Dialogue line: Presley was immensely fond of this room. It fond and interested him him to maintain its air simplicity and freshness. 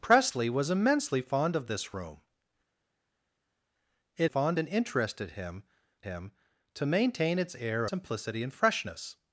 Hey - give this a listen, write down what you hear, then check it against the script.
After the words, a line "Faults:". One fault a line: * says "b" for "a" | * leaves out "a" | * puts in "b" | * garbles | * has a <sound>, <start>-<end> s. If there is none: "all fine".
Presley was immensely fond of this room. It fond and interested him him to maintain its air simplicity and freshness.
Faults:
all fine